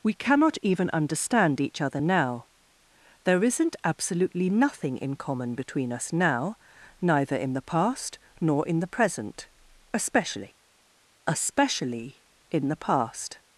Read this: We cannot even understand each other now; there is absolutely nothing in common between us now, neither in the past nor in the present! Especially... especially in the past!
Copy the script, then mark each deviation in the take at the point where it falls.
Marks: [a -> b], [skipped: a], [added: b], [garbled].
We cannot even understand each other now; there [is -> isn't] absolutely nothing in common between us now, neither in the past nor in the present! Especially... especially in the past!